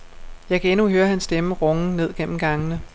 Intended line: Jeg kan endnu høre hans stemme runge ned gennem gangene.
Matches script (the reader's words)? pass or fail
pass